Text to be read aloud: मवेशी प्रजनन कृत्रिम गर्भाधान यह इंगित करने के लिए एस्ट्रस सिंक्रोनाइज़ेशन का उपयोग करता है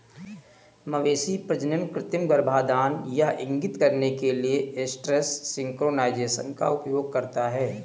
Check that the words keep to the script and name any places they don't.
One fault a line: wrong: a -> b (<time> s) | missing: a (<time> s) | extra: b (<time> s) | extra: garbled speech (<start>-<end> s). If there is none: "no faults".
no faults